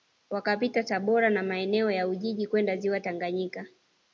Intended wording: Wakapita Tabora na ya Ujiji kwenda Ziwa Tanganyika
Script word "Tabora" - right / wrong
right